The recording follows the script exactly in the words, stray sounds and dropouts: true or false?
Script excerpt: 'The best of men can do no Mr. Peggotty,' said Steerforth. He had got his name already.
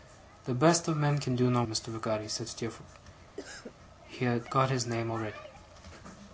false